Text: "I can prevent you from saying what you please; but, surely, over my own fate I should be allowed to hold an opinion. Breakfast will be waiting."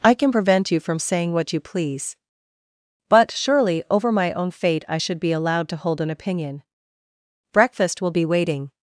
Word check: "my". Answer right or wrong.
right